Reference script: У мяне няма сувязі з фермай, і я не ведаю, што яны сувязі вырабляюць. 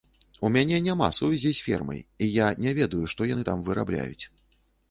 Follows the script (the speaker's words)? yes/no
no